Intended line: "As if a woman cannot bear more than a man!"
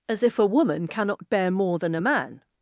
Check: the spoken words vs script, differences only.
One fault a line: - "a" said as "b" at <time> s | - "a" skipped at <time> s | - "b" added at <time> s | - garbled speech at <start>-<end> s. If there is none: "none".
none